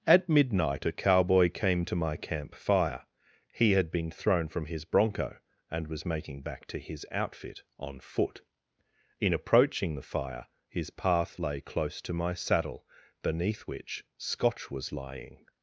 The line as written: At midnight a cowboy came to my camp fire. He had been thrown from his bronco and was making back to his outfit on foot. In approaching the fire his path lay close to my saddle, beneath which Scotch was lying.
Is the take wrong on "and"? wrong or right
right